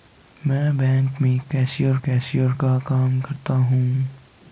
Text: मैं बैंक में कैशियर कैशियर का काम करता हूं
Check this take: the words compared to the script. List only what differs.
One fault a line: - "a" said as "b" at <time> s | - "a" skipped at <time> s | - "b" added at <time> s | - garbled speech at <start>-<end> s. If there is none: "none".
none